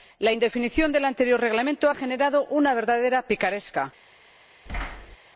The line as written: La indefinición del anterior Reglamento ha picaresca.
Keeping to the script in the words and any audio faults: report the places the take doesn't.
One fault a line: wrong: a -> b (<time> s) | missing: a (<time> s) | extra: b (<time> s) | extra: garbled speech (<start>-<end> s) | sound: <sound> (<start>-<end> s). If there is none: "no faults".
extra: generado una verdadera (1.9 s)
sound: thud (4.7-5.2 s)